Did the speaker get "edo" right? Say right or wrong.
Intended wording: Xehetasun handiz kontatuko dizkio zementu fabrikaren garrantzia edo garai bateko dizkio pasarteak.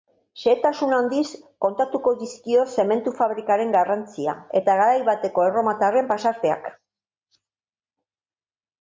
wrong